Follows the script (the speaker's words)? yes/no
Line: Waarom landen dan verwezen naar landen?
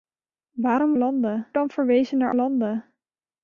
yes